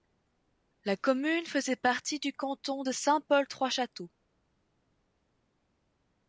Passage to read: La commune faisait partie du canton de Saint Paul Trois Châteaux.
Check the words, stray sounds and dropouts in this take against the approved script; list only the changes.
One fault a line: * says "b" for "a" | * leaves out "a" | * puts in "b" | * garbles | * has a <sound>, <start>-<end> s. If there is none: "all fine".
all fine